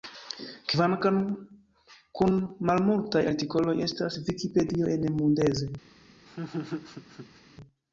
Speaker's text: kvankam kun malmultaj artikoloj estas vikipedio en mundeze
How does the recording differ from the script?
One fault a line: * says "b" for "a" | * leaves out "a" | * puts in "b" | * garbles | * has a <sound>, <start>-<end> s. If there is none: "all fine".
* has a laugh, 6.3-7.4 s